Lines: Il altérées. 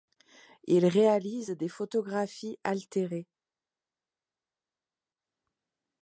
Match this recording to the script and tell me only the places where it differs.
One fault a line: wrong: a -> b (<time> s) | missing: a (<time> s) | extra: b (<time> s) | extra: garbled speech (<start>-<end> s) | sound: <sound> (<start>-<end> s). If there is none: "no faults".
extra: réalise des photographies (0.9 s)